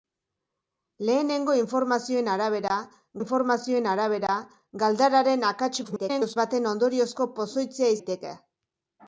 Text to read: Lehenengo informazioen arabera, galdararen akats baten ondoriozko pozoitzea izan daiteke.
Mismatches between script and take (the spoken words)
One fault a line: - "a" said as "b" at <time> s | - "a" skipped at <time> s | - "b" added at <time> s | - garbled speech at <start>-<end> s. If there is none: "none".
- "informazioen arabera" added at 3.2 s
- garbled speech at 5.8-6.4 s
- "izan" skipped at 8.0 s